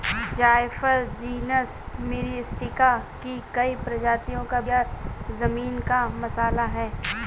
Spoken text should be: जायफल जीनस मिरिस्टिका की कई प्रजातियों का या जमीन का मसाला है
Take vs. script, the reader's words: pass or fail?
pass